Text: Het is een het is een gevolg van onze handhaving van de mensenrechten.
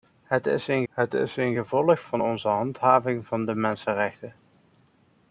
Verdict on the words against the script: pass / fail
pass